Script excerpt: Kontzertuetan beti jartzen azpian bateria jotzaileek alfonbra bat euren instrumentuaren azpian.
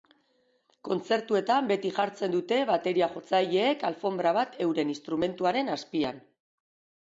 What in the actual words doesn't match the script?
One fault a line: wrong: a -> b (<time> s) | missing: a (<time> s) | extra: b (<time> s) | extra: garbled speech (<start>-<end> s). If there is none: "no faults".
wrong: azpian -> dute (2.4 s)